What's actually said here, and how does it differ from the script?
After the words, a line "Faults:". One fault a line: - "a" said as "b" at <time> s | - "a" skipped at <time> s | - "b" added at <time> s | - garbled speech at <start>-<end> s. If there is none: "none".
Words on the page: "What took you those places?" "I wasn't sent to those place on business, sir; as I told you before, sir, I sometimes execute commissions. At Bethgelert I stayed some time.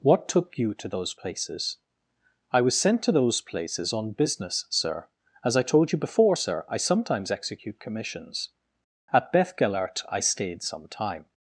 "What took you to those places?" "I was sent to those places on business, sir; as I told you before, sir, I sometimes execute commissions. At Bethgelert I stayed some time.
Faults:
- "to" added at 0.8 s
- "wasn't" said as "was" at 2.6 s
- "place" said as "places" at 3.4 s